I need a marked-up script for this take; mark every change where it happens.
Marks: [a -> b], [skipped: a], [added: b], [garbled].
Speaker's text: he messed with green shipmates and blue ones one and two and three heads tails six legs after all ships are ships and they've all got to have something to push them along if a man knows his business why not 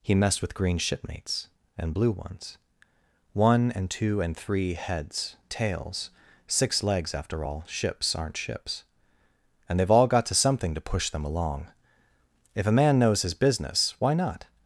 he messed with green shipmates and blue ones one and two and three heads tails six legs after all ships [are -> aren't] ships and they've all got to [skipped: have] something to push them along if a man knows his business why not